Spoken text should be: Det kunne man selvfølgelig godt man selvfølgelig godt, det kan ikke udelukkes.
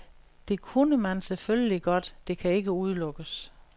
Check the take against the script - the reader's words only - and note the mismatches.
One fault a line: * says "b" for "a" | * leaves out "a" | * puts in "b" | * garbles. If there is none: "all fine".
* leaves out "man selvfølgelig godt"